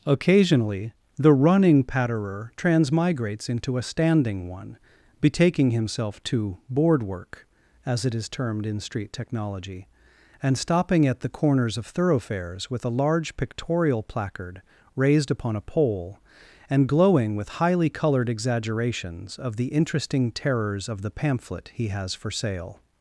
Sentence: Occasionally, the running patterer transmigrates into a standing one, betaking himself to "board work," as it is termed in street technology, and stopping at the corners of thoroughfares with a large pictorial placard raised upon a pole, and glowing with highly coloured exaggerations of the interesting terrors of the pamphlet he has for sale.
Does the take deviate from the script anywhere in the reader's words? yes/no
no